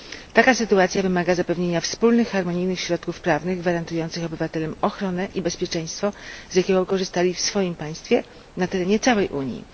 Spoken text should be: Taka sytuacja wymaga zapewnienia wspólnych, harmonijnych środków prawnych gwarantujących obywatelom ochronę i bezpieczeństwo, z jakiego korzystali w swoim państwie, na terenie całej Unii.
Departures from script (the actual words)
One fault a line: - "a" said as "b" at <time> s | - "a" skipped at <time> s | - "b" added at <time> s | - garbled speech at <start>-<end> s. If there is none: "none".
none